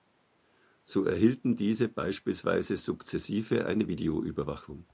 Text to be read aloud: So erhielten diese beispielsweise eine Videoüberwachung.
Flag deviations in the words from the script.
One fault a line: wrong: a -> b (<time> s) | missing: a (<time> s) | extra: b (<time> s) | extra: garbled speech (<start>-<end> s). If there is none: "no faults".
extra: sukzessive (2.8 s)